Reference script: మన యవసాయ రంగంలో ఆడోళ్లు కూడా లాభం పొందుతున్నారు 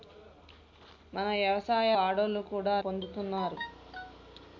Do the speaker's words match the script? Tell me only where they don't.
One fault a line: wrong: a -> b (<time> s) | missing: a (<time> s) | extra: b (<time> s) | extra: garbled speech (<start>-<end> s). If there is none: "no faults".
missing: రంగంలో (1.9 s)
missing: లాభం (2.7 s)